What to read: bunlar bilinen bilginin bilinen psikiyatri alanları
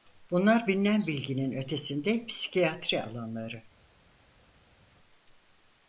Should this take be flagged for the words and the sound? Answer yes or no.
yes